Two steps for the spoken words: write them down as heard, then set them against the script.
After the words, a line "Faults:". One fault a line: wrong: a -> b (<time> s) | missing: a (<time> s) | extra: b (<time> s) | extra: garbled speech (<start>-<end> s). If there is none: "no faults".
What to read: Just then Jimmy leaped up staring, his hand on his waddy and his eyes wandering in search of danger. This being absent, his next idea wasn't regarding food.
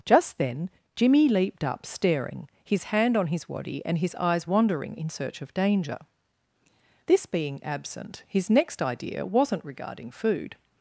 Just then Jimmy leaped up staring, his hand on his waddy and his eyes wandering in search of danger. This being absent, his next idea wasn't regarding food.
Faults:
no faults